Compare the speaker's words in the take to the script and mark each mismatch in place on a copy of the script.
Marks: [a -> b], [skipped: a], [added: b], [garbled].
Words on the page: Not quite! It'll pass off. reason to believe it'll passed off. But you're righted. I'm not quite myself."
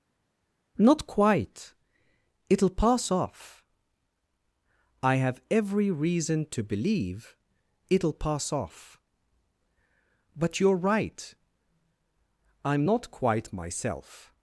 Not quite! It'll pass off. [added: I have every] reason to believe it'll [passed -> pass] off. But you're [righted. -> right] I'm not quite myself."